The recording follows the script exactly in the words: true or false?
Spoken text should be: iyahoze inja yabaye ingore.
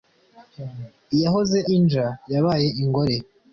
true